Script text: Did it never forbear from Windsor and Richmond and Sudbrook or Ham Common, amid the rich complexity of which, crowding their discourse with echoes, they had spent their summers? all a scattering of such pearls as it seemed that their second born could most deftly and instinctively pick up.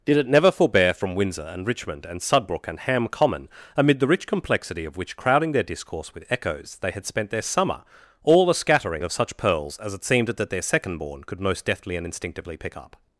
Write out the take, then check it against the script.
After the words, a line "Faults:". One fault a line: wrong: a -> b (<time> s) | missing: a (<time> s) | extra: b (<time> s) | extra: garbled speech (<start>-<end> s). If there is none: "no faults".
Did it never forbear from Windsor and Richmond and Sudbrook and Ham Common, amid the rich complexity of which, crowding their discourse with echoes, they had spent their summer? all a scattering of such pearls as it seemed that their second born could most deftly and instinctively pick up.
Faults:
wrong: or -> and (2.7 s)
wrong: summers -> summer (7.4 s)